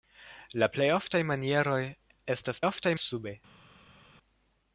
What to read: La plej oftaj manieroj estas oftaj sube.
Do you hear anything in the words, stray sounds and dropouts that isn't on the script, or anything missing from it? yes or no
no